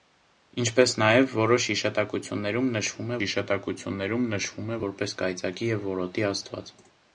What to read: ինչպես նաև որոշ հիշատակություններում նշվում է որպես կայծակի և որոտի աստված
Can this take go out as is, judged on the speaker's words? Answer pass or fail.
fail